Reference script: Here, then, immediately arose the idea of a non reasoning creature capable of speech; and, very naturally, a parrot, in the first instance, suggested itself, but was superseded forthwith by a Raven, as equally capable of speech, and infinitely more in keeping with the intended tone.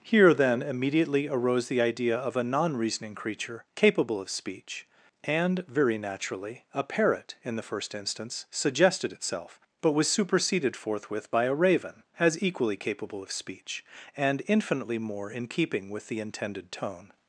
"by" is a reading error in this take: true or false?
false